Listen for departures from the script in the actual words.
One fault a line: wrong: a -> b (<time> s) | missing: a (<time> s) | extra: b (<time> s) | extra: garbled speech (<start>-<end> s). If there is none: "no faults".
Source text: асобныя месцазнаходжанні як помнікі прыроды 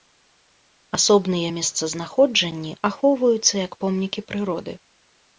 extra: ахоўваюцца (2.9 s)